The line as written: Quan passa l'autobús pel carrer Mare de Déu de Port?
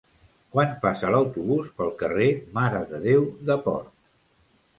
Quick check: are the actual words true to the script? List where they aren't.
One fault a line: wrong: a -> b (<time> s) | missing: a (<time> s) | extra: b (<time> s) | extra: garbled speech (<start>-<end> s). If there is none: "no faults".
no faults